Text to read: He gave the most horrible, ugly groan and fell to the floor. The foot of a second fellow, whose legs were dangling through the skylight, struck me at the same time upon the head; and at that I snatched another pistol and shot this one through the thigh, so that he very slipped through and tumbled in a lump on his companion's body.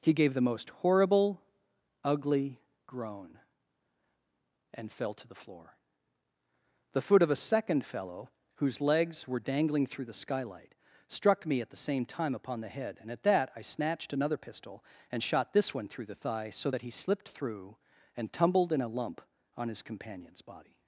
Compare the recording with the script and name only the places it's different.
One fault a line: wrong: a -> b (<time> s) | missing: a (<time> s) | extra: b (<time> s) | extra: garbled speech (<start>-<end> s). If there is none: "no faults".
missing: very (16.9 s)